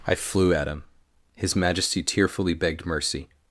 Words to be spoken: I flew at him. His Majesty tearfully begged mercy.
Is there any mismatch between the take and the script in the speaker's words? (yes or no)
no